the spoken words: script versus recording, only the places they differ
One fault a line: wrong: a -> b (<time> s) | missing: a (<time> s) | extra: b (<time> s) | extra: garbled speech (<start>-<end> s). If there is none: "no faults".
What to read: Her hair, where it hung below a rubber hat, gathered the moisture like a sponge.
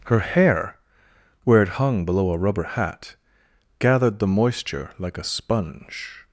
no faults